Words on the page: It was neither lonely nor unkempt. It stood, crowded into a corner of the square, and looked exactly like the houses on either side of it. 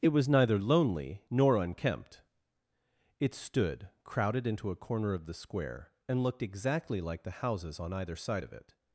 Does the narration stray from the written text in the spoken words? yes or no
no